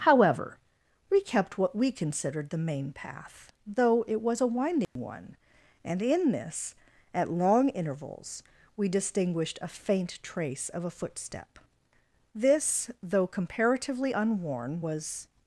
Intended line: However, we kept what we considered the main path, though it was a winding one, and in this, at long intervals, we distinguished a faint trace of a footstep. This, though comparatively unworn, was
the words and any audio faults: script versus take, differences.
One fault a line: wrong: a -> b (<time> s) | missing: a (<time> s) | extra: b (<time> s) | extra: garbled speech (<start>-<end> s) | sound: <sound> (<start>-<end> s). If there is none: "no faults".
sound: dropout (4.8-5.0 s)